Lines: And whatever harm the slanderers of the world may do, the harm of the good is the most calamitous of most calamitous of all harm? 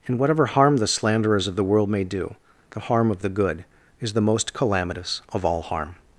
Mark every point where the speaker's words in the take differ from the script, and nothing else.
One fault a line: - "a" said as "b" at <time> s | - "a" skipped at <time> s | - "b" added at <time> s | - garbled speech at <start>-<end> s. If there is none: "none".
- "most calamitous of" skipped at 5.4 s